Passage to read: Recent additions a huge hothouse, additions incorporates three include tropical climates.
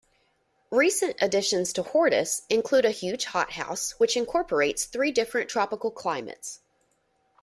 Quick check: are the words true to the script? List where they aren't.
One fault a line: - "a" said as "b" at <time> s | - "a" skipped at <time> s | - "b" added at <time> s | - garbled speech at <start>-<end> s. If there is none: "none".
- "to Hortus include" added at 1.7 s
- "additions" said as "which" at 4.0 s
- "include" said as "different" at 5.1 s